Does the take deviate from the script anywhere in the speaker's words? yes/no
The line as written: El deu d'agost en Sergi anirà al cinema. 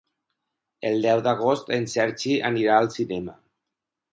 no